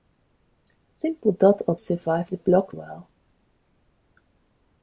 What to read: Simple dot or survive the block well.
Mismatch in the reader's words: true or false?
false